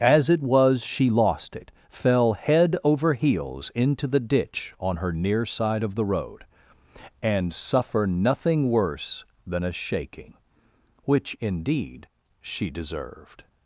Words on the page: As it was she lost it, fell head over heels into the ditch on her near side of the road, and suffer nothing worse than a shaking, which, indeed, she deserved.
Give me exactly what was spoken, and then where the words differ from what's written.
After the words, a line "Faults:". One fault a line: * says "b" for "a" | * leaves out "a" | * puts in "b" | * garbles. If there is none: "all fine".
As it was she lost it, fell head over heels into the ditch on her near side of the road, and suffer nothing worse than a shaking, which, indeed, she deserved.
Faults:
all fine